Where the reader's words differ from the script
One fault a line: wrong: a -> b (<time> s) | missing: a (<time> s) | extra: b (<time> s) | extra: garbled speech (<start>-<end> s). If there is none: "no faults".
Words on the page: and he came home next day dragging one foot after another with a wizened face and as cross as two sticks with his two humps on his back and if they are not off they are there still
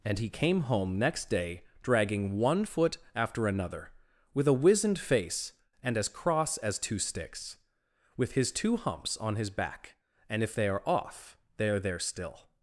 missing: not (10.8 s)